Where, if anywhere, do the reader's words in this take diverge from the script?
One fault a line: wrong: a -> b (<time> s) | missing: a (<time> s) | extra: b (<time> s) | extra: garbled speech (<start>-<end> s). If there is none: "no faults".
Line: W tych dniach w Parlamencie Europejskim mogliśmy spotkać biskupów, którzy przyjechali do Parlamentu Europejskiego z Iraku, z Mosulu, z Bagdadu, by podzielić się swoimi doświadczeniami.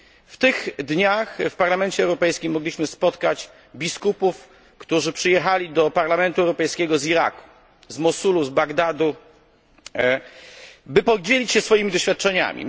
no faults